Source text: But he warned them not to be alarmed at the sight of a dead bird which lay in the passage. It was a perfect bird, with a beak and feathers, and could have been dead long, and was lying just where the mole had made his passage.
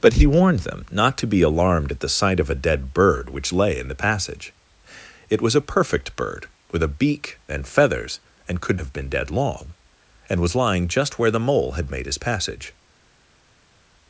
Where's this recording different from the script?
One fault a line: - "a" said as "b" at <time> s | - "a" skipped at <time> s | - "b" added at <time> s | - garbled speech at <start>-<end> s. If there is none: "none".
none